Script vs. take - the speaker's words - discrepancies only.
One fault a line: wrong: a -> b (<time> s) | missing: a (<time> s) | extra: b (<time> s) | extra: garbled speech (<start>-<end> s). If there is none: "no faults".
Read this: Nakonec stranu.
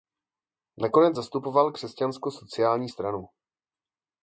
extra: zastupoval Křesťansko sociální (1.1 s)